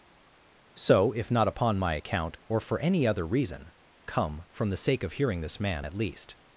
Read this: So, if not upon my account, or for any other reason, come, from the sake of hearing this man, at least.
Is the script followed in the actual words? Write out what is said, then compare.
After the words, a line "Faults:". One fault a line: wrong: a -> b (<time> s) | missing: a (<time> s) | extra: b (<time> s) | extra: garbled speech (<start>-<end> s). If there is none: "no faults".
So, if not upon my account, or for any other reason, come, from the sake of hearing this man, at least.
Faults:
no faults